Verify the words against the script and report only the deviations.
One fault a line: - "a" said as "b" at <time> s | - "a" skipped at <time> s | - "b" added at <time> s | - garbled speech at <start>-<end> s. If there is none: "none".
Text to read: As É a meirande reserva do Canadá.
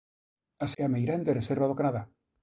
none